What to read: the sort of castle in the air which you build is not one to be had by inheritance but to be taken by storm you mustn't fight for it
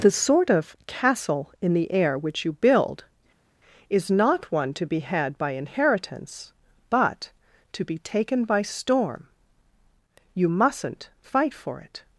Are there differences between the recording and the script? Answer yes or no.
no